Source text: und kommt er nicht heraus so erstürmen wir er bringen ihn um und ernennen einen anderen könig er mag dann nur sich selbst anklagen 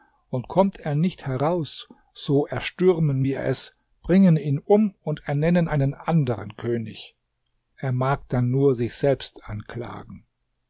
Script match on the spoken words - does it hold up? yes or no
no